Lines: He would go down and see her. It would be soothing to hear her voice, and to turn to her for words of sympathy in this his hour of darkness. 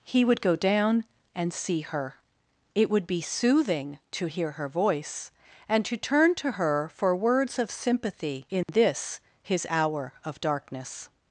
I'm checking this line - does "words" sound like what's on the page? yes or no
yes